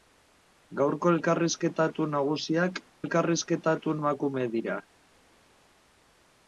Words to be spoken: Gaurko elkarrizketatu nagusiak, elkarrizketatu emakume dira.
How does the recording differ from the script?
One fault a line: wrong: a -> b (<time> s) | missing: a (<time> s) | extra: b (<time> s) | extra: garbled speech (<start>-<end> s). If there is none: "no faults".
no faults